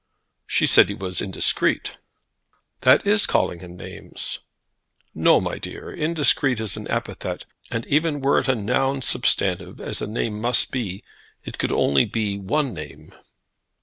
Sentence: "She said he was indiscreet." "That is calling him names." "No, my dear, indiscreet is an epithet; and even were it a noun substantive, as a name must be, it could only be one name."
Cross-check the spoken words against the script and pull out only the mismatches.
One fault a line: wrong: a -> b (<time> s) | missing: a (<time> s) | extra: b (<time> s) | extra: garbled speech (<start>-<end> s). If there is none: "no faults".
no faults